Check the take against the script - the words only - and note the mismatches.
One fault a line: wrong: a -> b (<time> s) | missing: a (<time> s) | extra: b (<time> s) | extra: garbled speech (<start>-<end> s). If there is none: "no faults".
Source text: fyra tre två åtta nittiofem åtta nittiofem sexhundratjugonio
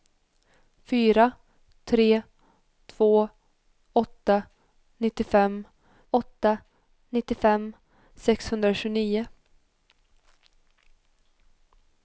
no faults